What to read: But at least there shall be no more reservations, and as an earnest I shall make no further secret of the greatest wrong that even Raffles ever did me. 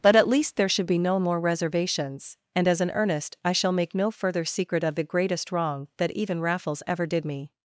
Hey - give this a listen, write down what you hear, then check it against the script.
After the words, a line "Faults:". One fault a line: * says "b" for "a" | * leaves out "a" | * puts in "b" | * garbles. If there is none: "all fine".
But at least there should be no more reservations, and as an earnest I shall make no further secret of the greatest wrong that even Raffles ever did me.
Faults:
* says "should" for "shall"